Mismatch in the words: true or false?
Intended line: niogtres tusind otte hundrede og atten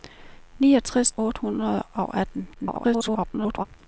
true